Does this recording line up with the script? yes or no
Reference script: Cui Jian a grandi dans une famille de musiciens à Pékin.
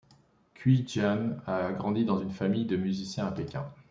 yes